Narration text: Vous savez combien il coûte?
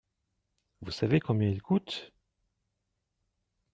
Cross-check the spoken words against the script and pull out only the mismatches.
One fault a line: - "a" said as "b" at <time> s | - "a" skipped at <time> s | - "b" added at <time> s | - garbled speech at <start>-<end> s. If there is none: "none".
none